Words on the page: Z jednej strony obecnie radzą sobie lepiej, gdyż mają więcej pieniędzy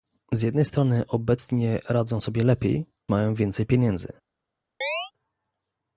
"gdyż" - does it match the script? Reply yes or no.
no